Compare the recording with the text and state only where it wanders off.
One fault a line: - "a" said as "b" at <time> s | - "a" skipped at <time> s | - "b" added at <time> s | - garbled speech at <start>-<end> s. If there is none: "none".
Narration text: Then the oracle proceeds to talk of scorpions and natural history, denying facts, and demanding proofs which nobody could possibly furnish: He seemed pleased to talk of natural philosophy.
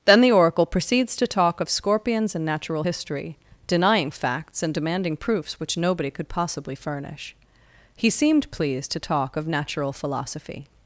none